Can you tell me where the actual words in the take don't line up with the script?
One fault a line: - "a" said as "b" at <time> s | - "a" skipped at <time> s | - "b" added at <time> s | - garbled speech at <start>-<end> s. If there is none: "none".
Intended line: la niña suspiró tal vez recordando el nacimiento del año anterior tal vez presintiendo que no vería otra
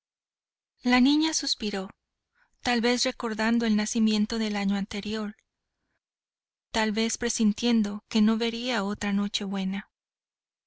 none